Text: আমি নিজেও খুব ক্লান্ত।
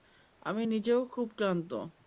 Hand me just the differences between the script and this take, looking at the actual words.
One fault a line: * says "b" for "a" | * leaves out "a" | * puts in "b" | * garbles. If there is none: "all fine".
all fine